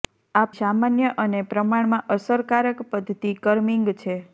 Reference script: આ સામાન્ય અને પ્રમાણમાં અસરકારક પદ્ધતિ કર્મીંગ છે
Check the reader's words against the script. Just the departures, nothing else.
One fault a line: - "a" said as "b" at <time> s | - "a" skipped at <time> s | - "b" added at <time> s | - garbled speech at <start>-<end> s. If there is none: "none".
none